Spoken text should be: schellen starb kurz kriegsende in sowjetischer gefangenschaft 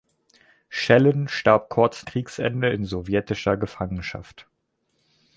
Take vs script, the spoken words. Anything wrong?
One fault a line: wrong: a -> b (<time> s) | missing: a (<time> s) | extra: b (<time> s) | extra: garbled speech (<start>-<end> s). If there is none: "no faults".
no faults